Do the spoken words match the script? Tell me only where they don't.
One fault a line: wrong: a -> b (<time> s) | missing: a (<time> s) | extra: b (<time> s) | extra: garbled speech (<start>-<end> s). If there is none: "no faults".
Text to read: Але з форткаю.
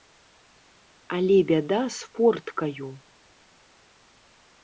extra: бяда (1.5 s)